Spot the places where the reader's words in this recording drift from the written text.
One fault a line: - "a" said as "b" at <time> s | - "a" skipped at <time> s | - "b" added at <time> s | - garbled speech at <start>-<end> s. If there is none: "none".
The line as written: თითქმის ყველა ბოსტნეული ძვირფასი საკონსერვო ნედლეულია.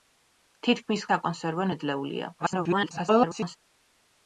- "ყველა ბოსტნეული ძვირფასი" skipped at 1.0 s
- garbled speech at 2.4-3.6 s